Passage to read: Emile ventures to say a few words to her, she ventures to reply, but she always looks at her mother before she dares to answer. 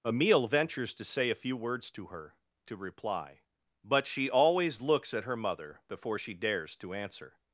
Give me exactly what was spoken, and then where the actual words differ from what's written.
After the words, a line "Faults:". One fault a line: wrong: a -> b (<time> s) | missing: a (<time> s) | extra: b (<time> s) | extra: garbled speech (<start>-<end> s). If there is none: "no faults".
Emile ventures to say a few words to her, to reply, but she always looks at her mother before she dares to answer.
Faults:
missing: she ventures (2.4 s)